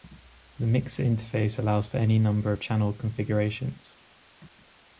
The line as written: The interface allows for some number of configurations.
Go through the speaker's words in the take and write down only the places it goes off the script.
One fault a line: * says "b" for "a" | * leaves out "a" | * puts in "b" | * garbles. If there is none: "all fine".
* puts in "mixer"
* says "any" for "some"
* puts in "channel"